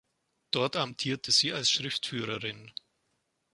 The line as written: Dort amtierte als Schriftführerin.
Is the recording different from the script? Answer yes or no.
yes